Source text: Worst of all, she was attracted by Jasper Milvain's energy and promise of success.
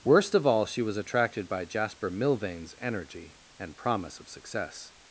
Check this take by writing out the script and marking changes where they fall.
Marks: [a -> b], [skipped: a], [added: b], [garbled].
Worst of all, she was attracted by Jasper Milvain's energy and promise of success.